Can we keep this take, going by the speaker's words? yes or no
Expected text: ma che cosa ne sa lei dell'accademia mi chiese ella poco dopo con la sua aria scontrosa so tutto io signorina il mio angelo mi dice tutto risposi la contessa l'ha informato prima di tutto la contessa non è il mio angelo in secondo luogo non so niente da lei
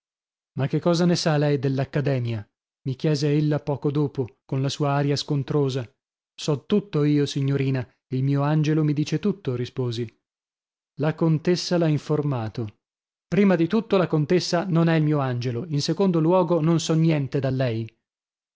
yes